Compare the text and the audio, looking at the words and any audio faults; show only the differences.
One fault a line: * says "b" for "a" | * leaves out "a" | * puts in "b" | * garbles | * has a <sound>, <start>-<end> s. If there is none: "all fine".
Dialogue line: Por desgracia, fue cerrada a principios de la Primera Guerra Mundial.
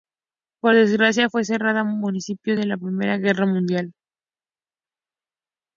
all fine